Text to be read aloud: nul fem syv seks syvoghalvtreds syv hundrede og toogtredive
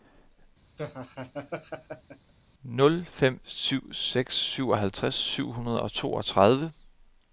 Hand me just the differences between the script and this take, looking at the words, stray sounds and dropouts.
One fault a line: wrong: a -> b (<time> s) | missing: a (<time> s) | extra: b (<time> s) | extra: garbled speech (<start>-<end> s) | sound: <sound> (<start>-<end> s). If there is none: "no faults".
sound: laugh (0.8-2.3 s)